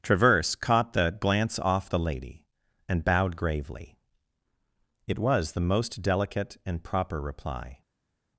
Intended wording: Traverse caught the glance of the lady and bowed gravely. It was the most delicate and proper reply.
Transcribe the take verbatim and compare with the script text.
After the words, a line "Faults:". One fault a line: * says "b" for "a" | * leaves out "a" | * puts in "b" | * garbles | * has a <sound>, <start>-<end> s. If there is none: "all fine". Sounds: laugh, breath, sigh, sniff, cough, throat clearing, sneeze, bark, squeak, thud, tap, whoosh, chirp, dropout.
Traverse caught the glance off the lady and bowed gravely. It was the most delicate and proper reply.
Faults:
* says "off" for "of"